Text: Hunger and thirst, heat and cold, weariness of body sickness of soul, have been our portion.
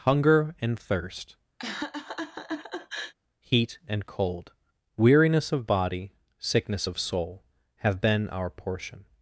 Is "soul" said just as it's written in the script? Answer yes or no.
yes